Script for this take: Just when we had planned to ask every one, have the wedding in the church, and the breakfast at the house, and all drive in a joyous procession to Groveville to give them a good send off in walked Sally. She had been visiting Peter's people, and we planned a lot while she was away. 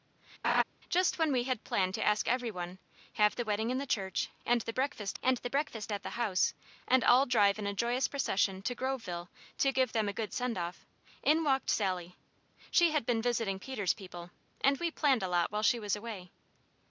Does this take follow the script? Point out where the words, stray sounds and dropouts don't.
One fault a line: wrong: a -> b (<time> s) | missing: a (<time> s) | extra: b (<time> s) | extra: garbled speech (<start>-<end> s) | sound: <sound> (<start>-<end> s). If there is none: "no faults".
sound: laugh (0.4-0.6 s)
extra: and the breakfast (5.2 s)